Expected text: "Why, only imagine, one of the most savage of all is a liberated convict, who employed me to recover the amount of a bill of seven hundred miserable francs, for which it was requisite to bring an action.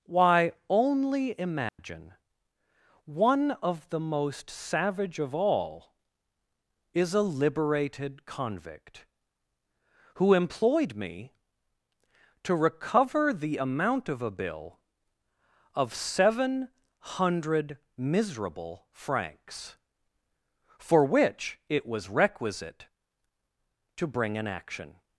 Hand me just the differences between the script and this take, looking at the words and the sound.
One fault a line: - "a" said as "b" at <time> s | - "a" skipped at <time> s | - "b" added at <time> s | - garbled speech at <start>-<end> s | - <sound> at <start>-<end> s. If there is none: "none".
- dropout at 1.7-1.8 s